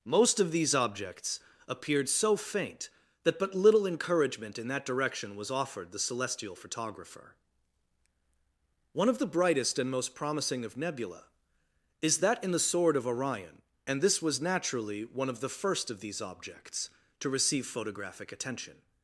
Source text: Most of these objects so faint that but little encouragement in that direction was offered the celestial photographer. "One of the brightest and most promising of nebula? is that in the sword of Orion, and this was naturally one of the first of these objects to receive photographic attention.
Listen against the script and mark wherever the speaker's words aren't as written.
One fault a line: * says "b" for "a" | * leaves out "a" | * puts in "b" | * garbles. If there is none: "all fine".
* puts in "appeared"